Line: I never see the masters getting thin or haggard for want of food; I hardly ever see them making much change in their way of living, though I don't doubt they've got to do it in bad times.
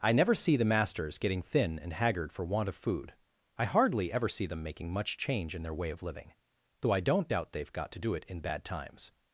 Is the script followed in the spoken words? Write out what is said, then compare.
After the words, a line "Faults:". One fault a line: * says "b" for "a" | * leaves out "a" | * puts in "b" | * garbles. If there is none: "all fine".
I never see the masters getting thin and haggard for want of food; I hardly ever see them making much change in their way of living, though I don't doubt they've got to do it in bad times.
Faults:
* says "and" for "or"